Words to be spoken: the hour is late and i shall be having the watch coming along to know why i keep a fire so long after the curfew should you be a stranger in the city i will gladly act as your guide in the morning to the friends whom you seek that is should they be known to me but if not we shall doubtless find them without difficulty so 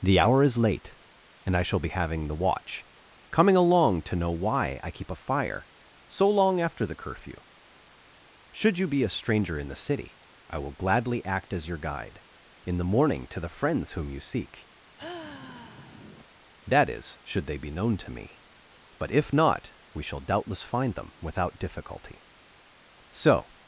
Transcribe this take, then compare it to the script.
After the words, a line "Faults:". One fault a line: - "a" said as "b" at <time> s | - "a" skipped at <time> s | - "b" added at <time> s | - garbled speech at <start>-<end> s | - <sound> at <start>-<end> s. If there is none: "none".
the hour is late and i shall be having the watch coming along to know why i keep a fire so long after the curfew should you be a stranger in the city i will gladly act as your guide in the morning to the friends whom you seek that is should they be known to me but if not we shall doubtless find them without difficulty so
Faults:
- sigh at 15.0-16.3 s